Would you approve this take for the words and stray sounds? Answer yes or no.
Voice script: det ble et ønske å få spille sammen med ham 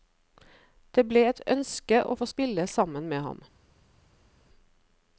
yes